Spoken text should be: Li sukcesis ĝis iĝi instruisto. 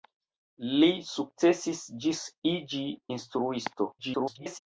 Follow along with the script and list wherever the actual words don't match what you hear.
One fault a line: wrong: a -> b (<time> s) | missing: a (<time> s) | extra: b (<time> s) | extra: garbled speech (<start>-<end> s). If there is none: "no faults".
extra: garbled speech (4.0-4.6 s)